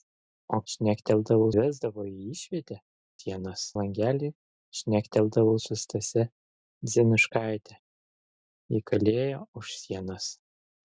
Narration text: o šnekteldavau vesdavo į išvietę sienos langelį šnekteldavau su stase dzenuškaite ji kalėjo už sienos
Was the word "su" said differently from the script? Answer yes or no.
no